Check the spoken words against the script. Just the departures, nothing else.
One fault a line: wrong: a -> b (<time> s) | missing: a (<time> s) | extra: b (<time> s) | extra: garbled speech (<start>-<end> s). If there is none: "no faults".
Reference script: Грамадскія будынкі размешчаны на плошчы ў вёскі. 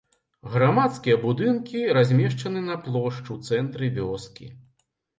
extra: цэнтры (3.5 s)